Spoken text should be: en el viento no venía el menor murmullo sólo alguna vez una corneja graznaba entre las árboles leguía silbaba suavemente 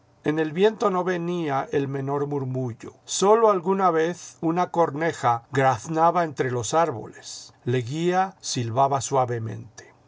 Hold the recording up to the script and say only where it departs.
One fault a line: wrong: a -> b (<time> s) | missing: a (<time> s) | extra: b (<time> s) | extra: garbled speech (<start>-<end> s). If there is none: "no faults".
wrong: las -> los (6.5 s)